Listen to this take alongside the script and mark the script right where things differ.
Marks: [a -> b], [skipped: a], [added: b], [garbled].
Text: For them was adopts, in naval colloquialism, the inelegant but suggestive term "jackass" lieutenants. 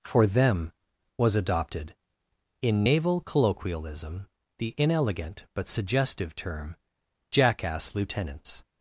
For them was [adopts, -> adopted] in naval colloquialism, the inelegant but suggestive term "jackass" lieutenants.